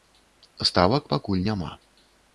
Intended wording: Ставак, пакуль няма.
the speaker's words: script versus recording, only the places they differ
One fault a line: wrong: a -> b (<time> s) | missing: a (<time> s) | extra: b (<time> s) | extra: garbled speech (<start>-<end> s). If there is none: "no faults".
no faults